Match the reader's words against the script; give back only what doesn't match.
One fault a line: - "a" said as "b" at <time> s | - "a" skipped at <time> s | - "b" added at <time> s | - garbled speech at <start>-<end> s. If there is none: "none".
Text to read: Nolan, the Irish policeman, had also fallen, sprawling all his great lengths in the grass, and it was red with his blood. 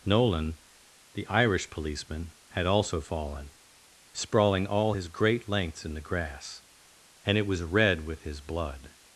none